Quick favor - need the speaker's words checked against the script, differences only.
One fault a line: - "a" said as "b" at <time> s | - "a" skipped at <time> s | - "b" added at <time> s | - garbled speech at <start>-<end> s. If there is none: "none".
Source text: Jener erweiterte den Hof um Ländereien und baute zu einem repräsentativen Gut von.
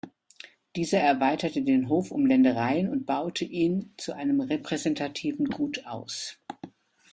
- "Jener" said as "Dieser" at 0.8 s
- "ihn" added at 3.5 s
- "von" said as "aus" at 5.8 s